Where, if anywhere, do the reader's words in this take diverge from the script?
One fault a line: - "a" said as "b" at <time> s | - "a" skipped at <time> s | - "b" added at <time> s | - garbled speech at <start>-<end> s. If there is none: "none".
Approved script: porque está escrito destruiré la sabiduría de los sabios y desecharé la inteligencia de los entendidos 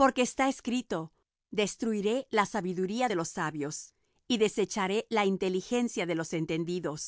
none